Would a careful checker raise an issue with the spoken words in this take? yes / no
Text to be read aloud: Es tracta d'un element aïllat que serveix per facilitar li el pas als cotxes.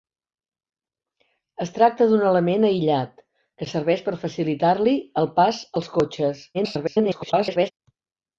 yes